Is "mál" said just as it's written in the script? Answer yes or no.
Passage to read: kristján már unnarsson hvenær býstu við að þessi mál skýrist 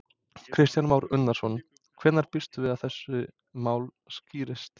yes